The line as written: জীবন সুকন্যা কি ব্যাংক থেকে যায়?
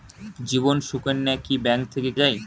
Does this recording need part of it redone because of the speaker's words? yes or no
no